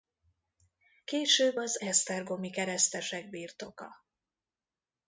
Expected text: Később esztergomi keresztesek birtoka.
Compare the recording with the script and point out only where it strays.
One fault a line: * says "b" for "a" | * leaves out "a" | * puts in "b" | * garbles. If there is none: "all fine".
* puts in "az"